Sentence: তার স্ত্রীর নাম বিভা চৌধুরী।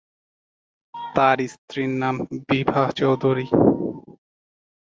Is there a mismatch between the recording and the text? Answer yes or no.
no